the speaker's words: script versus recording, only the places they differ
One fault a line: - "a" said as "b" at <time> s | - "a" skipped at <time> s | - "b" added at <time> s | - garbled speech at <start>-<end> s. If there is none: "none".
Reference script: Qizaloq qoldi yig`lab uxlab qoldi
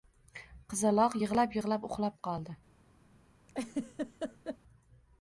- "qoldi" said as "yig`lab" at 1.2 s